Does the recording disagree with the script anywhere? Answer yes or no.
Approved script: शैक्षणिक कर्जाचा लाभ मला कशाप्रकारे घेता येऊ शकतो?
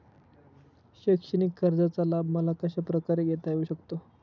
no